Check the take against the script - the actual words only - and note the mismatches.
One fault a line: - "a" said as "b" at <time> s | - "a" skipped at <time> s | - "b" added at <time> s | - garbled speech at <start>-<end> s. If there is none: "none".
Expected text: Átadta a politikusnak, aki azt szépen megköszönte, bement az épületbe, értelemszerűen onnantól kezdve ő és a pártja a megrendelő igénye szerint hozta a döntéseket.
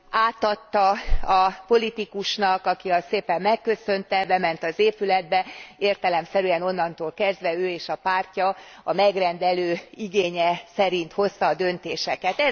none